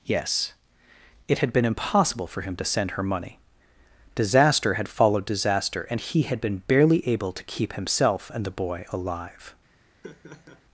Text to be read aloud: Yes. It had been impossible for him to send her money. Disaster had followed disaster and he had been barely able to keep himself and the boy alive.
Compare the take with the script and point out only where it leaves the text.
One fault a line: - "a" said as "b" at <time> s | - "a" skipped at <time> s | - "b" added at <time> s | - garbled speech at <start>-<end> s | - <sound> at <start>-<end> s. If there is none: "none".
- laugh at 10.0-10.6 s